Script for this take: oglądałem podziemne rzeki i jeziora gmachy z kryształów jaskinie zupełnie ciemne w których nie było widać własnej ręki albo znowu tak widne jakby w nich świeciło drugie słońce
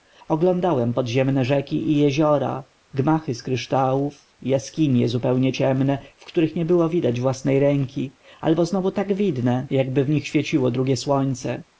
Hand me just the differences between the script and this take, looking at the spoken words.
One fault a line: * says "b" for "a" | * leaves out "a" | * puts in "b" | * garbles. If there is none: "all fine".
all fine